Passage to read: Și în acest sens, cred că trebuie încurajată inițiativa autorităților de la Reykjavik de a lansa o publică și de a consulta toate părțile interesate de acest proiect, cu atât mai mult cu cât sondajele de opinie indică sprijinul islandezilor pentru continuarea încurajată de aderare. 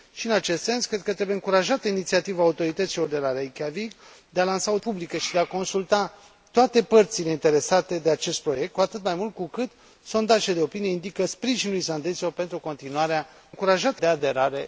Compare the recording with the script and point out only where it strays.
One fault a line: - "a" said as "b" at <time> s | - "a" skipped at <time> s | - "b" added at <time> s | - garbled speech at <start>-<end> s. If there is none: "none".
none